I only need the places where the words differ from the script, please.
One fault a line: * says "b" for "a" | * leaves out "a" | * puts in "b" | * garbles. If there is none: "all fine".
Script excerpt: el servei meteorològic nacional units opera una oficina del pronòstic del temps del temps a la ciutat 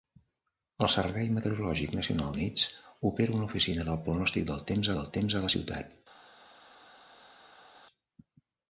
all fine